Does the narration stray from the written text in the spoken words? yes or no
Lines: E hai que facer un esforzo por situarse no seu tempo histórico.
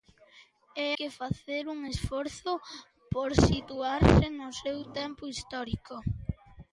yes